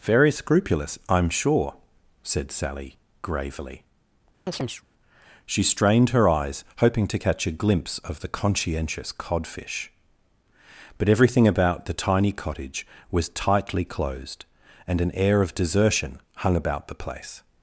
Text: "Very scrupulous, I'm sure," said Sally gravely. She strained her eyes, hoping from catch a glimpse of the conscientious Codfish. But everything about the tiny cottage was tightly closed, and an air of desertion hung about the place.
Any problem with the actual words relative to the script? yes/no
yes